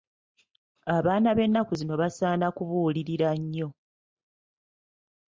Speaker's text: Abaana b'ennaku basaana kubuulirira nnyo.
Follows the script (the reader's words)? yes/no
no